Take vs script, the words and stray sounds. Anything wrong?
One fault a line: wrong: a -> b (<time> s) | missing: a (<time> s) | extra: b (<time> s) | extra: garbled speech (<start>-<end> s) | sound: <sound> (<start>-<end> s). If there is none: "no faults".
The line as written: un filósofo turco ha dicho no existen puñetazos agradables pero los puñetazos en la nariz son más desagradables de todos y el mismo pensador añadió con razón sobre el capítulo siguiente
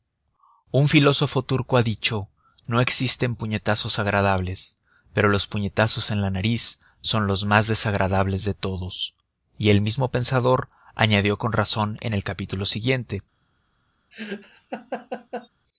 extra: los (7.3 s)
wrong: sobre -> en (12.0 s)
sound: laugh (14.1-15.5 s)